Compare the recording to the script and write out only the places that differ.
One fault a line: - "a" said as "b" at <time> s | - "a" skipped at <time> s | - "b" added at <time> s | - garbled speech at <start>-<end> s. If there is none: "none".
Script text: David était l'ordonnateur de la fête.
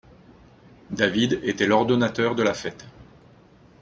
none